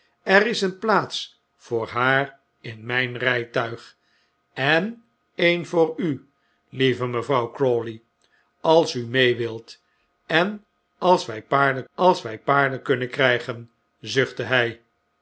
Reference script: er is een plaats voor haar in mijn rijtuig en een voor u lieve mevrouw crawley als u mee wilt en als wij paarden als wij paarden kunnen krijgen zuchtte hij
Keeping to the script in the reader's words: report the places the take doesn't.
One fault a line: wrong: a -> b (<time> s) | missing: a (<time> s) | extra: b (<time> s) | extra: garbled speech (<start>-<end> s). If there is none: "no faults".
no faults